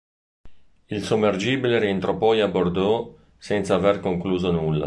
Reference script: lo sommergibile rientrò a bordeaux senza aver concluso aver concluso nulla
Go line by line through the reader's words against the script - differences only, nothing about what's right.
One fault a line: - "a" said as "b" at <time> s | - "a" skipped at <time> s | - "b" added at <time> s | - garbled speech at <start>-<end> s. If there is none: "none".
- "lo" said as "il" at 0.9 s
- "poi" added at 2.2 s
- "aver concluso" skipped at 4.5 s